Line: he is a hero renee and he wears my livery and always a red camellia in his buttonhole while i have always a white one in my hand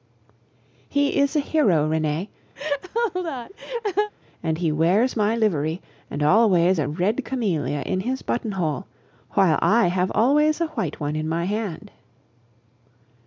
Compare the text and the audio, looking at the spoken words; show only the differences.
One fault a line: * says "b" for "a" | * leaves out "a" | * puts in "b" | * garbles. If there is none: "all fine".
all fine